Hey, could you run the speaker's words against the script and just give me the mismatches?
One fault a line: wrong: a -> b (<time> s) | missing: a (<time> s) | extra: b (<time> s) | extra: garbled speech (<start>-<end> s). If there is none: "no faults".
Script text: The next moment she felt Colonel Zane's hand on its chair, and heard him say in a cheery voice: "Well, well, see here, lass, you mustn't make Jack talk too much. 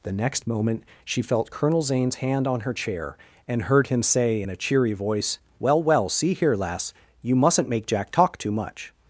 wrong: its -> her (2.6 s)